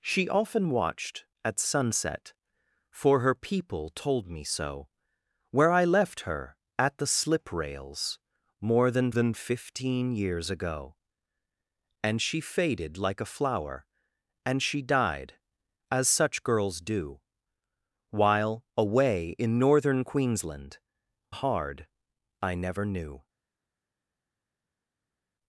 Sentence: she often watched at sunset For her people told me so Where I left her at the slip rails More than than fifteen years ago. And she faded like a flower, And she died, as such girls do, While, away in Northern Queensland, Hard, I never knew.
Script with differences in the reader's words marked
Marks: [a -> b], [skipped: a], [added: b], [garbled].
she often watched at sunset For her people told me so Where I left her at the slip rails More than than fifteen years ago. And she faded like a flower, And she died, as such girls do, While, away in Northern Queensland, Hard, I never knew.